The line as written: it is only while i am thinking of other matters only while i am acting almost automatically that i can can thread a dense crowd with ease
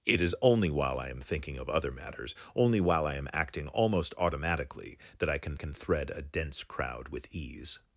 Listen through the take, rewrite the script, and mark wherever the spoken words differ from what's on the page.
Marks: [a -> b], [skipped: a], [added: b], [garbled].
it is only while i am thinking of other matters only while i am acting almost automatically that i can can thread a dense crowd with ease